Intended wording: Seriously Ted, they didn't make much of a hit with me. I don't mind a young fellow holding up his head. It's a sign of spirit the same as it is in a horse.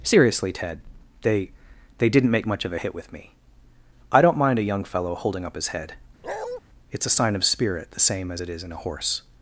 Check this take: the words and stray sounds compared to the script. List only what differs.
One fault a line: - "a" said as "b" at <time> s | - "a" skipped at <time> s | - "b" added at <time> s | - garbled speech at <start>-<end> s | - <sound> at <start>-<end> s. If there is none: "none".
- "they" added at 2.0 s
- bark at 6.2-6.6 s